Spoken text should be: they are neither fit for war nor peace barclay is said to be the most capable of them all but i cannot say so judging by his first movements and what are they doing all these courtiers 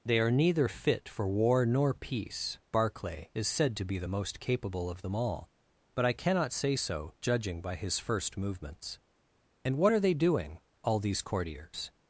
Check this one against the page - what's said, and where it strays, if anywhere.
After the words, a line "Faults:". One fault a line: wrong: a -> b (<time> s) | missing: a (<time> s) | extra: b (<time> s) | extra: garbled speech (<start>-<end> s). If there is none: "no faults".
they are neither fit for war nor peace barclay is said to be the most capable of them all but i cannot say so judging by his first movements and what are they doing all these courtiers
Faults:
no faults